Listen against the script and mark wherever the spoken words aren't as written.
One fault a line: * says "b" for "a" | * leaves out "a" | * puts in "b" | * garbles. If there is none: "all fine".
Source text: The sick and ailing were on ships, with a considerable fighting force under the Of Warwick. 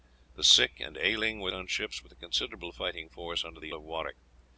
all fine